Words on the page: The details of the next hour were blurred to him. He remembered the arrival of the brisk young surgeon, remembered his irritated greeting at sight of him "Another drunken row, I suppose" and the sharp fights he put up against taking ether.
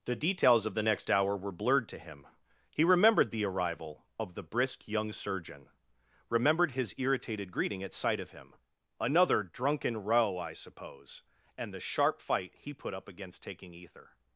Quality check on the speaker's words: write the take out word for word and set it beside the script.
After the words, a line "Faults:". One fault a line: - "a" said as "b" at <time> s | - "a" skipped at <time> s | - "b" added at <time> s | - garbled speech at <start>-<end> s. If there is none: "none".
The details of the next hour were blurred to him. He remembered the arrival of the brisk young surgeon, remembered his irritated greeting at sight of him "Another drunken row, I suppose" and the sharp fight he put up against taking ether.
Faults:
- "fights" said as "fight" at 12.2 s